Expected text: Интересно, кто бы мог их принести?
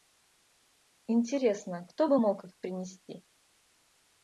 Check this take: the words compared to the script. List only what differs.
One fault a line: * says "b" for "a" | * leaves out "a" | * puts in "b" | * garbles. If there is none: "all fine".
all fine